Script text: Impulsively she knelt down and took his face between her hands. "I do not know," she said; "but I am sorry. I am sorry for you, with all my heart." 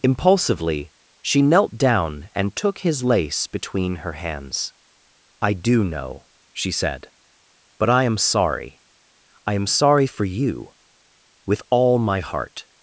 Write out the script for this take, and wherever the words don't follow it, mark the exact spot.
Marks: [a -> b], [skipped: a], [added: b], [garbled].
Impulsively she knelt down and took his [face -> lace] between her hands. "I do [skipped: not] know," she said; "but I am sorry. I am sorry for you, with all my heart."